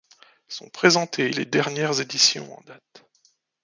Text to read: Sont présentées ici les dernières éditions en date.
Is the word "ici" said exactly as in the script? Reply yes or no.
no